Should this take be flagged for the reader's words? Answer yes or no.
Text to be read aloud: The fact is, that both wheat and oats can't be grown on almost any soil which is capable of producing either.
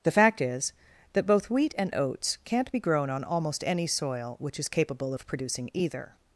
no